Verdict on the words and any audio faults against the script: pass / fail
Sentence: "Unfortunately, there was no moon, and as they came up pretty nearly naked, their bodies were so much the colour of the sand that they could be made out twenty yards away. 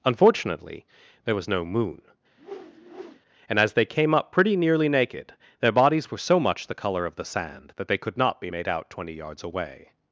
fail